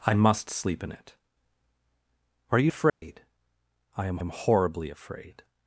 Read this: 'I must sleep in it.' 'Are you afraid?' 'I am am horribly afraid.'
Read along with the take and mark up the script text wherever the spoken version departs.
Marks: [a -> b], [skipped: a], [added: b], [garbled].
'I must sleep in it.' 'Are you afraid?' 'I am am horribly afraid.'